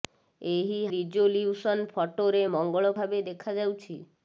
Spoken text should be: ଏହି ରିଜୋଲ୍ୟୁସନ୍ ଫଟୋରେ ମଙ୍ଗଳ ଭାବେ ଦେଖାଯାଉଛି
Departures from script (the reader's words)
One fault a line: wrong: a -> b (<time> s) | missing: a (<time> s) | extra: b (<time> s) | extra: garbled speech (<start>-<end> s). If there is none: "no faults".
no faults